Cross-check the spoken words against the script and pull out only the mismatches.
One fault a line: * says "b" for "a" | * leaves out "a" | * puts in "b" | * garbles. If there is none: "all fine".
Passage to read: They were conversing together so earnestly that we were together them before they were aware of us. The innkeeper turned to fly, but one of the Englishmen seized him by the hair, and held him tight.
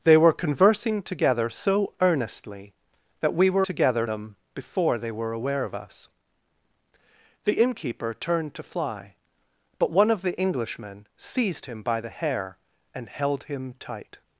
all fine